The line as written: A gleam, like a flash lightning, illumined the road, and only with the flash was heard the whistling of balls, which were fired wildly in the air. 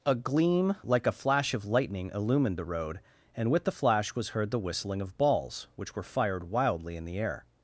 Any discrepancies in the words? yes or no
yes